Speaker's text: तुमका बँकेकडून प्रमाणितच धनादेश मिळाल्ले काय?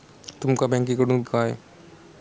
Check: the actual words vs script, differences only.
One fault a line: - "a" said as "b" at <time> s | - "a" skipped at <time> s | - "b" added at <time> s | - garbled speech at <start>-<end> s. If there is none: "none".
- "प्रमाणितच धनादेश मिळाल्ले" skipped at 1.2 s